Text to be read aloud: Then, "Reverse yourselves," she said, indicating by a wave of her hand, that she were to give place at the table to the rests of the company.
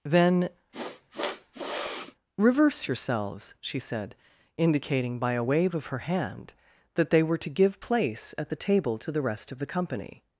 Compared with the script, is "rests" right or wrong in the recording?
wrong